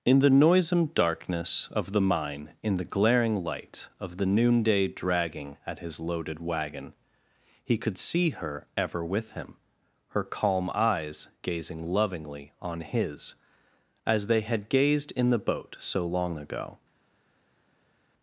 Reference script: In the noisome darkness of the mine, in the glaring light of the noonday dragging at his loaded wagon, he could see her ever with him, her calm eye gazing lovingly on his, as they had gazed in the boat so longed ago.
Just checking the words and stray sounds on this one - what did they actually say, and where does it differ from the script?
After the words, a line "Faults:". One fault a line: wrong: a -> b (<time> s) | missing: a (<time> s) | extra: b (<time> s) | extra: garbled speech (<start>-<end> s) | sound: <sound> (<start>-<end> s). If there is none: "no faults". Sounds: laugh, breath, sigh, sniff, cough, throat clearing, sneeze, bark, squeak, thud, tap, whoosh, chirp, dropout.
In the noisome darkness of the mine, in the glaring light of the noonday dragging at his loaded wagon, he could see her ever with him, her calm eyes gazing lovingly on his, as they had gazed in the boat so long ago.
Faults:
wrong: eye -> eyes (10.7 s)
wrong: longed -> long (16.1 s)